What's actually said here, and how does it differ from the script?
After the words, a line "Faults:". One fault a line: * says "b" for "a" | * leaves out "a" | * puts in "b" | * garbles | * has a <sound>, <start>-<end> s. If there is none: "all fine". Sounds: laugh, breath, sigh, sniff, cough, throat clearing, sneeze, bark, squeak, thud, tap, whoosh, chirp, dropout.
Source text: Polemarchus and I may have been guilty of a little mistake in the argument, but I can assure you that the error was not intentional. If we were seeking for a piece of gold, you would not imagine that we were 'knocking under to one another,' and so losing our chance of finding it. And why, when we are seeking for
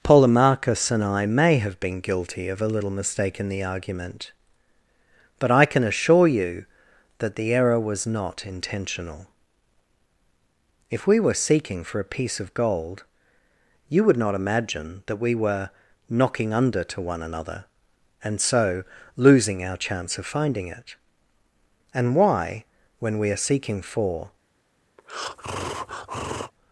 Polemarchus and I may have been guilty of a little mistake in the argument, but I can assure you that the error was not intentional. If we were seeking for a piece of gold, you would not imagine that we were 'knocking under to one another,' and so losing our chance of finding it. And why, when we are seeking for
Faults:
* has a breath, 25.0-26.5 s